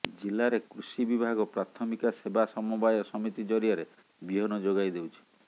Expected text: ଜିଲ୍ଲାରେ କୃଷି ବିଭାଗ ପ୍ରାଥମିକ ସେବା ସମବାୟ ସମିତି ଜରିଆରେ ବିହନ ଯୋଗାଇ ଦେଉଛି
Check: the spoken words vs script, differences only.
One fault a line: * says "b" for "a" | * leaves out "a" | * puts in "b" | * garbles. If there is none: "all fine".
all fine